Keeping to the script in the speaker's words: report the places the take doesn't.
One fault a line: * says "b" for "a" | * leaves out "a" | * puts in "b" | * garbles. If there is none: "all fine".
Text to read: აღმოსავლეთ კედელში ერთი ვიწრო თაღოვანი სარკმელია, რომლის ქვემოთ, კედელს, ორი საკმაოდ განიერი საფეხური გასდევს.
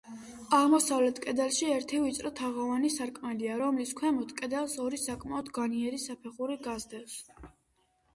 all fine